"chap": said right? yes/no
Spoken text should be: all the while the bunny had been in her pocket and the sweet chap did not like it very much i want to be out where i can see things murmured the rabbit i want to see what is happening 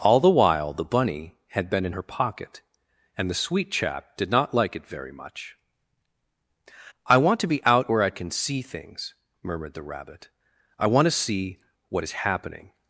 yes